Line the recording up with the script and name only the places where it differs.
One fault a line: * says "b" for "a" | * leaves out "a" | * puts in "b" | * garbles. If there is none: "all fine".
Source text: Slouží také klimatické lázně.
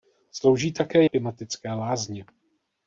all fine